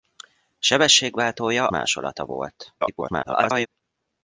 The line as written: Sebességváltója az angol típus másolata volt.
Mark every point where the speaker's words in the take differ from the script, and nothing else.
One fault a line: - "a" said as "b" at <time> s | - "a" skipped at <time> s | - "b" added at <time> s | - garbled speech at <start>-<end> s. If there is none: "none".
- "az angol típus" skipped at 1.7 s
- garbled speech at 2.8-3.7 s